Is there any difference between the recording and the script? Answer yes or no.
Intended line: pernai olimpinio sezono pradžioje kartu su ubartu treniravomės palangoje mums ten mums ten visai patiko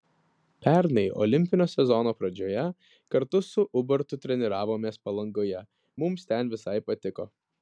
yes